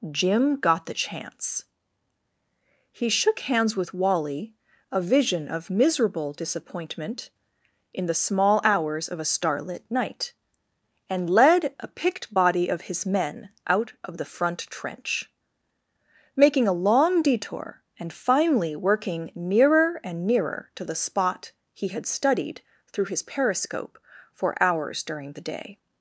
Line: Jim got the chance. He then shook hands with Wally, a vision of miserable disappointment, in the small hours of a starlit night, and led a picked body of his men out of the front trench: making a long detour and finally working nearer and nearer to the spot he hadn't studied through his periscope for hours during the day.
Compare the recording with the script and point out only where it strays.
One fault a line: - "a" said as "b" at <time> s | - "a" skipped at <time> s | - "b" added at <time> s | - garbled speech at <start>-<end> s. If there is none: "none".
- "then" skipped at 3.1 s
- "hadn't" said as "had" at 21.9 s